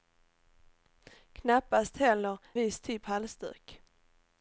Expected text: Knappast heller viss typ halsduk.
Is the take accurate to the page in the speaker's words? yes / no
yes